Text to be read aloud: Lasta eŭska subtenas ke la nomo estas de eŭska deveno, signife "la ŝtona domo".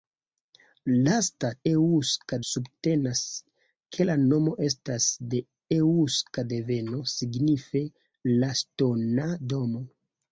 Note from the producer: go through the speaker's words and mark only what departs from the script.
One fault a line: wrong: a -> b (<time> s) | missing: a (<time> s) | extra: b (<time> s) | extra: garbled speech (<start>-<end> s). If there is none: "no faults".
no faults